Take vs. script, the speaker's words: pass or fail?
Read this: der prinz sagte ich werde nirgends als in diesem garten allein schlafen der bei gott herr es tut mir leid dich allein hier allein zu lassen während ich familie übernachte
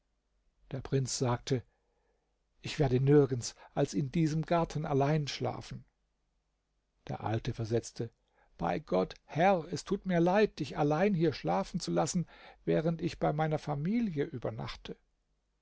fail